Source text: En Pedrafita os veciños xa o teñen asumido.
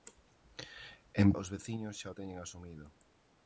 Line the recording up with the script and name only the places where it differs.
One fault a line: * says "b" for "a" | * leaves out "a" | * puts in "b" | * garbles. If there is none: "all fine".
* leaves out "Pedrafita"